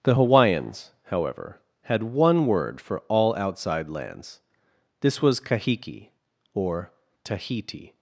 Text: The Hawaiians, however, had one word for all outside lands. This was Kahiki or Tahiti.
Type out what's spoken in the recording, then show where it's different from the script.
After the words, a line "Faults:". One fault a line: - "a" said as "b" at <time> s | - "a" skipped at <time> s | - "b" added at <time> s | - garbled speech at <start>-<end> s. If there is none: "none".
The Hawaiians, however, had one word for all outside lands. This was Kahiki or Tahiti.
Faults:
none